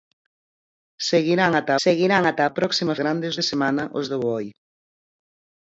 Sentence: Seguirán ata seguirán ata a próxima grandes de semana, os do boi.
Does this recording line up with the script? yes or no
yes